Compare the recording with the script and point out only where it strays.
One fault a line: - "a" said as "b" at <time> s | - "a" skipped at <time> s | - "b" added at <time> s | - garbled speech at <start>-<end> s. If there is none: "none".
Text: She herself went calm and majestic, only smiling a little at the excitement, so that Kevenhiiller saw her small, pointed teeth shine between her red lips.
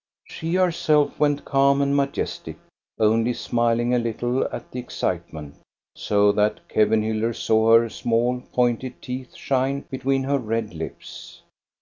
none